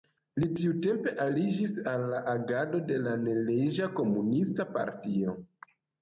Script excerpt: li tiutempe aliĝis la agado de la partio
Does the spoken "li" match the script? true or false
true